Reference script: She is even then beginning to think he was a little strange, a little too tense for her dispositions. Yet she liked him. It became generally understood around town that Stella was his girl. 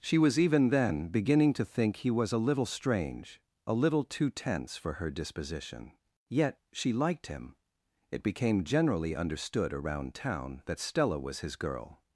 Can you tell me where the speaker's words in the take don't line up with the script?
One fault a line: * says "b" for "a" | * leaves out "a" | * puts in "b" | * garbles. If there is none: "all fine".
* says "was" for "is"
* says "disposition" for "dispositions"